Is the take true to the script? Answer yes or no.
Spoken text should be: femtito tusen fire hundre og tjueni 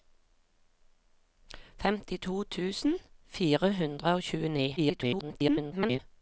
no